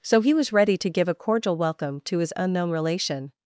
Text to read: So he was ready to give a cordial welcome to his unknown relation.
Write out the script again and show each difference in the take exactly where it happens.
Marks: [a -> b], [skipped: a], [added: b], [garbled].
So he was ready to give a cordial welcome to his unknown relation.